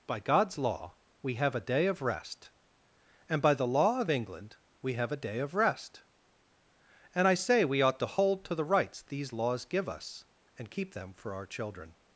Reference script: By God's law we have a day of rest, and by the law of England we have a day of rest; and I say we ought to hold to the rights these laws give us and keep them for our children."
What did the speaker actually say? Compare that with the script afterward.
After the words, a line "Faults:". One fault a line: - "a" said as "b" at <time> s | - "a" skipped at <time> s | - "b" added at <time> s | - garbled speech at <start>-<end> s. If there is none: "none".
By God's law we have a day of rest, and by the law of England we have a day of rest; and I say we ought to hold to the rights these laws give us and keep them for our children."
Faults:
none